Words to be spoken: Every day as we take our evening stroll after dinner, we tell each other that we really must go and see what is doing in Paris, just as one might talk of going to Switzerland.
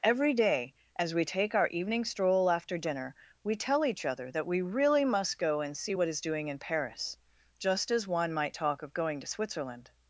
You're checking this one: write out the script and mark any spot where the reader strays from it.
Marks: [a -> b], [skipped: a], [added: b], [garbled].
Every day as we take our evening stroll after dinner, we tell each other that we really must go and see what is doing in Paris, just as one might talk of going to Switzerland.